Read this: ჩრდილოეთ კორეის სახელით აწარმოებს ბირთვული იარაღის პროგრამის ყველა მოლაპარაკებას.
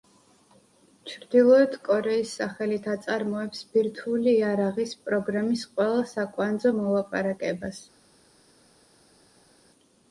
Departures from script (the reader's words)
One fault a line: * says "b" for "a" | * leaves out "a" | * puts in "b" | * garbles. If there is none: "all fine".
* puts in "საკვანძო"